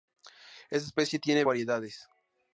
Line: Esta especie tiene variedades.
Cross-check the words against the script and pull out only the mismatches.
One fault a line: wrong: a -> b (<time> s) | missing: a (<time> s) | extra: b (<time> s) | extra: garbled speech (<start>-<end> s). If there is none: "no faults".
no faults